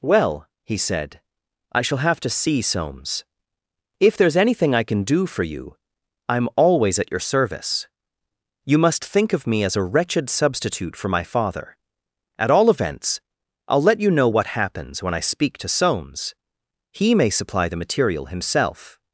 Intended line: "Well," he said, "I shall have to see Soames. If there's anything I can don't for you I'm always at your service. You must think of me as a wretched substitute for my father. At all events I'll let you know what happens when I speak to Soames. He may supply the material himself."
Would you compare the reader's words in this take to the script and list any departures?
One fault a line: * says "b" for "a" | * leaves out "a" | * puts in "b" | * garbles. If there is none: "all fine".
* says "do" for "don't"